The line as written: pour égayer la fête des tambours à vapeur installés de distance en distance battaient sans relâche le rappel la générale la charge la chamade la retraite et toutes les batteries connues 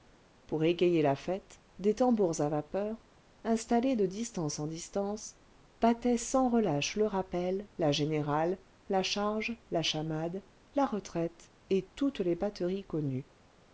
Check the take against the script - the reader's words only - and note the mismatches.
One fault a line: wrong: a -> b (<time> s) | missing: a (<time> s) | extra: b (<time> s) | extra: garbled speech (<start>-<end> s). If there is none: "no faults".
no faults